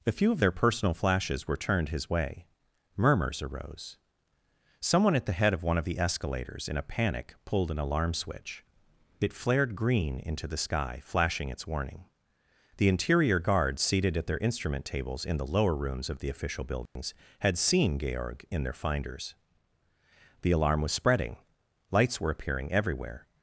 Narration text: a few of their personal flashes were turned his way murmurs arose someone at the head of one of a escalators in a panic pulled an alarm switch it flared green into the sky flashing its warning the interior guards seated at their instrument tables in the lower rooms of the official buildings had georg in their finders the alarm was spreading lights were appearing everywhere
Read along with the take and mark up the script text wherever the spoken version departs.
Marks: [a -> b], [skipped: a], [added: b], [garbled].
a few of their personal flashes were turned his way murmurs arose someone at the head of one of [a -> the] escalators in a panic pulled an alarm switch it flared green into the sky flashing its warning the interior guards seated at their instrument tables in the lower rooms of the official buildings had [added: seen] georg in their finders the alarm was spreading lights were appearing everywhere